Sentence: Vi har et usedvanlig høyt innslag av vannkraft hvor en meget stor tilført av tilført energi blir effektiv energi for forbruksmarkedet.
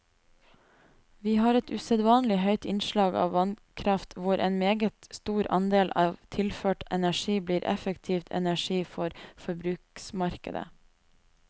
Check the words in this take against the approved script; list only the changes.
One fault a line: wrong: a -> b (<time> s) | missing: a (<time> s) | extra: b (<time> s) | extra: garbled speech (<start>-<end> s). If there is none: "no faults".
wrong: tilført -> andel (5.6 s)